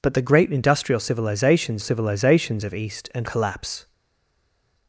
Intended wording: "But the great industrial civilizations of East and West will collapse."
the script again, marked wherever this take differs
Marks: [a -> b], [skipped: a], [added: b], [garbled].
"But the great industrial civilizations [added: civilizations] of East and [skipped: West will] collapse."